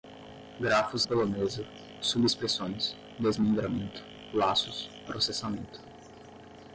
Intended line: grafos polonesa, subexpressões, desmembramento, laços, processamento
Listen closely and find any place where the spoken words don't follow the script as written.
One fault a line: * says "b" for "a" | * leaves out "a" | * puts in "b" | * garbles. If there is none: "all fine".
all fine